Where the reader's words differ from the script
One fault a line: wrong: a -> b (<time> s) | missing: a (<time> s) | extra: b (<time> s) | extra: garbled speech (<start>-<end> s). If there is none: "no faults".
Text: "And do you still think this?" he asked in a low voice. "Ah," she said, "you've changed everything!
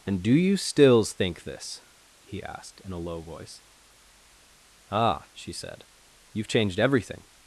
wrong: still -> stills (0.6 s)